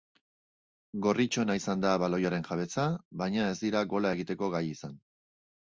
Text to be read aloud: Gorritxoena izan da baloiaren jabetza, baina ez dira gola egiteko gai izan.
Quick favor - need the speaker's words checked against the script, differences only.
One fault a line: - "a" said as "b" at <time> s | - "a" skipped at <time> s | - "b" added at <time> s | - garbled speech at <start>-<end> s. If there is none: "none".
none